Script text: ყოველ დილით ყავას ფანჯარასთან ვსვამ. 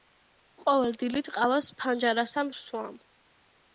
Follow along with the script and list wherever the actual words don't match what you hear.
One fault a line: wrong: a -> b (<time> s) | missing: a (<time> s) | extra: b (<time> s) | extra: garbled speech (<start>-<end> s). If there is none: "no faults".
no faults